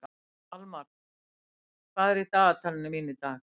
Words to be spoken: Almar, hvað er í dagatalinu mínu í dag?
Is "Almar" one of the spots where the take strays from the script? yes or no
no